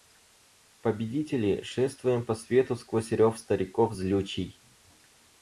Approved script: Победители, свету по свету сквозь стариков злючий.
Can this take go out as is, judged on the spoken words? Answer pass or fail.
fail